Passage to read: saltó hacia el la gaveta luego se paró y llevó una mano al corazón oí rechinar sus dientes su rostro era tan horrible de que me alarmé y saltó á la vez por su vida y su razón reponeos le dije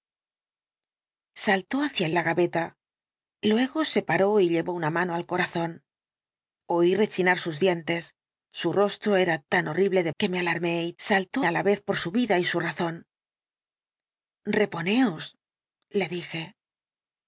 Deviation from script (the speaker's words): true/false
false